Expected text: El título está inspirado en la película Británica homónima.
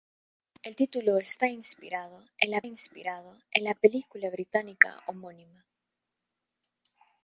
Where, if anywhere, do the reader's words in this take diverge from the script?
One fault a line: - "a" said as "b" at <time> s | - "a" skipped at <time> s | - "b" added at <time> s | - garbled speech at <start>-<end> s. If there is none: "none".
- "inspirado en la" added at 2.6 s